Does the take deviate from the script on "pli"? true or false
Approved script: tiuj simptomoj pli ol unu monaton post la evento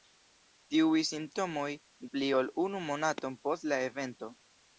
false